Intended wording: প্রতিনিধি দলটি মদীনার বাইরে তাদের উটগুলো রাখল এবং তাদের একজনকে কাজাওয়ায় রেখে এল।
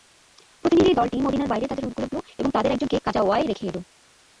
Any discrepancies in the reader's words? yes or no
no